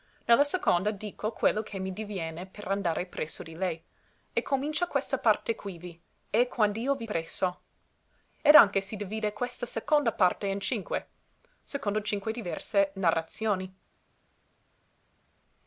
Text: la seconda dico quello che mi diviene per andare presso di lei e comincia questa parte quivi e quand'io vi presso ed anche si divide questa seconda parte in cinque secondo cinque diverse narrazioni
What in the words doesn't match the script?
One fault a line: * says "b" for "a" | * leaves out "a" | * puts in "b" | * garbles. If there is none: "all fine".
all fine